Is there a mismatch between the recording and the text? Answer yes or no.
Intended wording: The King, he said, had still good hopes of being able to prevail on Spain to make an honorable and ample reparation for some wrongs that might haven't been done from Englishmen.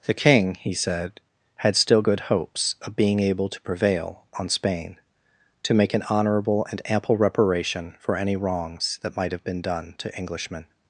yes